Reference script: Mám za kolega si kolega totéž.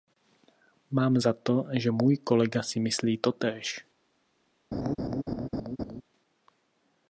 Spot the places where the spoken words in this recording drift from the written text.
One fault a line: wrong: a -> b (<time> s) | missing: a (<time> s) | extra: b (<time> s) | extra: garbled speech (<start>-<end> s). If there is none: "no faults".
extra: to že můj (1.3 s)
wrong: kolega -> myslí (2.8 s)